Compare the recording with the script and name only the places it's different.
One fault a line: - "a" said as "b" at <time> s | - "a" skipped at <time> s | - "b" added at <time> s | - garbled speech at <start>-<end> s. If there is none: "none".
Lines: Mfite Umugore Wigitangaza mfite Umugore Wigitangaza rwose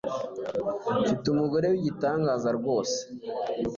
- "mfite Umugore Wigitangaza" skipped at 2.5 s